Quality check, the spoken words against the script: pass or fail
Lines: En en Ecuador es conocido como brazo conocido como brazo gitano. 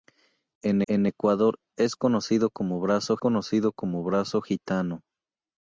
pass